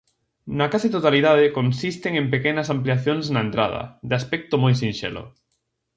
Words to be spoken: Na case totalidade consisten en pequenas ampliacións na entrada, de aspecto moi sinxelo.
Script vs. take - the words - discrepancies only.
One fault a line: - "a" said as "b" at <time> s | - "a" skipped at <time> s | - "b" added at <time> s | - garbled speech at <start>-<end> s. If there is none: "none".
none